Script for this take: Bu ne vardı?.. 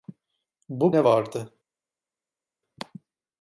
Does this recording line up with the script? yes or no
yes